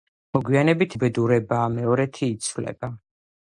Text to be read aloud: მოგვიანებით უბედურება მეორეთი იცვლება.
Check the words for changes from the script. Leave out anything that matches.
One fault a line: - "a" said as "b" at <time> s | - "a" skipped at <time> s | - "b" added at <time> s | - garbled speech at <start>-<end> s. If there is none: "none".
none